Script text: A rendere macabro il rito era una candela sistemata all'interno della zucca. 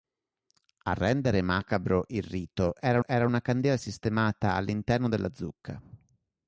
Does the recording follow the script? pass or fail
fail